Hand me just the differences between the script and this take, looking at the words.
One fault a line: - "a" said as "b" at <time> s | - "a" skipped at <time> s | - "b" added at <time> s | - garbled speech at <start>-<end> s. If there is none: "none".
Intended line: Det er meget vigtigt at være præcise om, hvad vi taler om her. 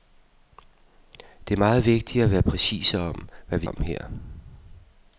- "taler" skipped at 3.7 s